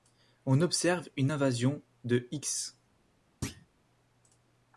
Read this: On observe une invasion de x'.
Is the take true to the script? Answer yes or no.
yes